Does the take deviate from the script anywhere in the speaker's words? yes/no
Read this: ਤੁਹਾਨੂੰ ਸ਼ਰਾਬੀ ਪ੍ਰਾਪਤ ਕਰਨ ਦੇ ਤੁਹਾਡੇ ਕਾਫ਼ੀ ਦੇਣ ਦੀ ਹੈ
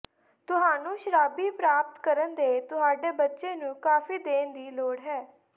yes